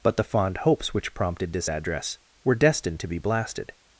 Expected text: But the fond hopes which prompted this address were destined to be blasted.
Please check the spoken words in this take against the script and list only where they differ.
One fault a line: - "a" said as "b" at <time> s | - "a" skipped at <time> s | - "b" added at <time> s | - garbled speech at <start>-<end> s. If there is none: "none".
none